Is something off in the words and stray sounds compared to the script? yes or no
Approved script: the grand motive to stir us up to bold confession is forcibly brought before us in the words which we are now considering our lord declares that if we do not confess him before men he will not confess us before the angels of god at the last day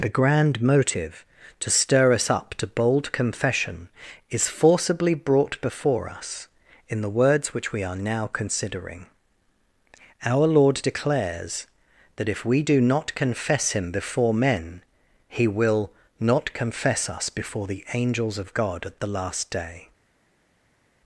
no